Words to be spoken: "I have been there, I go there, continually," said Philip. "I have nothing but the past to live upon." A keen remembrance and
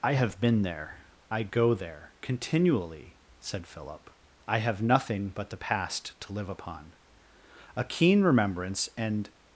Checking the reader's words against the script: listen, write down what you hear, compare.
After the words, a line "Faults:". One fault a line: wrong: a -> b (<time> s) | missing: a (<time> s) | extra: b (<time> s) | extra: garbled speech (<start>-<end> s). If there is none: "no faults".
"I have been there, I go there, continually," said Philip. "I have nothing but the past to live upon." A keen remembrance and
Faults:
no faults